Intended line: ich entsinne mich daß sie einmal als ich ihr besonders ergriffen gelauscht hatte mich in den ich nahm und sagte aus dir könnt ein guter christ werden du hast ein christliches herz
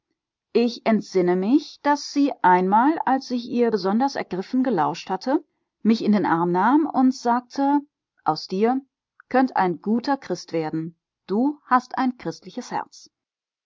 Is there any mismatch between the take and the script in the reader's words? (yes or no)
yes